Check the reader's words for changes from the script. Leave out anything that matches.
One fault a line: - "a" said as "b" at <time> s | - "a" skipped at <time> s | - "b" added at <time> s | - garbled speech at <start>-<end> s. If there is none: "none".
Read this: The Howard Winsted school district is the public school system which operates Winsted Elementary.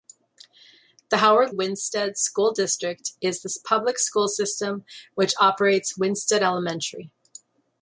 none